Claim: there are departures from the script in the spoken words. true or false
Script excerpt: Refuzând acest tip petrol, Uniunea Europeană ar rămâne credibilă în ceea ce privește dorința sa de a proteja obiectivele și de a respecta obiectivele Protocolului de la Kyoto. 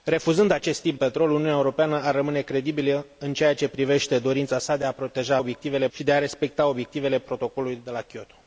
false